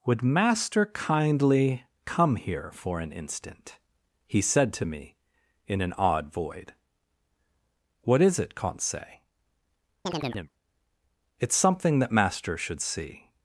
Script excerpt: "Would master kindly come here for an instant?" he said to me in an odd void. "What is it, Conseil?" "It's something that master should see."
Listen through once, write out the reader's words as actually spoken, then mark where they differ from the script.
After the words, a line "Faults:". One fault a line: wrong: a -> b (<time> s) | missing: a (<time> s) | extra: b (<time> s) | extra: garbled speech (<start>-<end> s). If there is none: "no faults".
"Would master kindly come here for an instant?" he said to me in an odd void. "What is it, Conseil?" "It's something that master should see."
Faults:
no faults